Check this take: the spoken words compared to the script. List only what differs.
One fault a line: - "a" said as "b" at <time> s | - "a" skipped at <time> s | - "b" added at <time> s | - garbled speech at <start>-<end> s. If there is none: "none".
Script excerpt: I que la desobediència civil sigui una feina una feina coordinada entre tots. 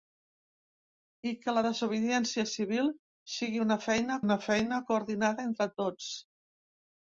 none